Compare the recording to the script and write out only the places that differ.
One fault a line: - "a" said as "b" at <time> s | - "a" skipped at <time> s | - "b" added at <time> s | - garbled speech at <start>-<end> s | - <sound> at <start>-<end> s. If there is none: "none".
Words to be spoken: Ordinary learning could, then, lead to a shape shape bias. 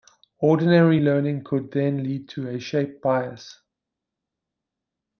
- "shape" skipped at 3.0 s